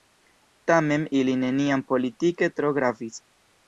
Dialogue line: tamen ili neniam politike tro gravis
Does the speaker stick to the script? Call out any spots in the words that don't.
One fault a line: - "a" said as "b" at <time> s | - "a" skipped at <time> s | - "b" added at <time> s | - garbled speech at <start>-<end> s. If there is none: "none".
none